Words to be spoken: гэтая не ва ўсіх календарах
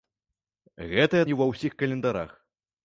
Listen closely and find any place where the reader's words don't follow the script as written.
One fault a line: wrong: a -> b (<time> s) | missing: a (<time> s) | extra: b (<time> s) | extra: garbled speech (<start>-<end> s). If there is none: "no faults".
no faults